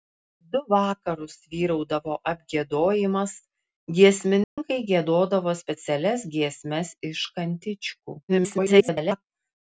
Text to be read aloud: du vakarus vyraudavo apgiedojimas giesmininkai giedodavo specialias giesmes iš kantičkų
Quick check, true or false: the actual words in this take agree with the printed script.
false